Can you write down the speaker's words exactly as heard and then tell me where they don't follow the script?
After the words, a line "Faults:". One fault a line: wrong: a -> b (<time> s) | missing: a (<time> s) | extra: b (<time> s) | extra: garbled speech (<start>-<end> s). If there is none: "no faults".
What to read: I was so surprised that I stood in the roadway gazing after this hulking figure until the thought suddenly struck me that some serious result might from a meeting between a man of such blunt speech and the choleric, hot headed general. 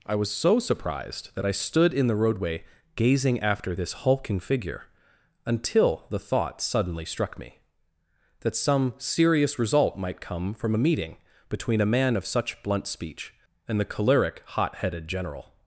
I was so surprised that I stood in the roadway gazing after this hulking figure until the thought suddenly struck me that some serious result might come from a meeting between a man of such blunt speech and the choleric, hot headed general.
Faults:
extra: come (10.2 s)